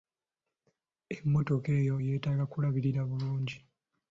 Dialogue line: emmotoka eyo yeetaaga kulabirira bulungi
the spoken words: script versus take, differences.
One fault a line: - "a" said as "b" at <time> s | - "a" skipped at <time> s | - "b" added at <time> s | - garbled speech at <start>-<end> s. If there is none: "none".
none